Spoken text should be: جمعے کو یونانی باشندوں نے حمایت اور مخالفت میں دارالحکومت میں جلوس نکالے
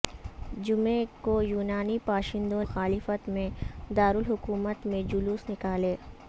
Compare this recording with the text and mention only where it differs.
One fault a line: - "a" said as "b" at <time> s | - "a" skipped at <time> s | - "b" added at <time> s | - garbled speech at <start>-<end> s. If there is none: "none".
- "نے حمایت اور" skipped at 2.6 s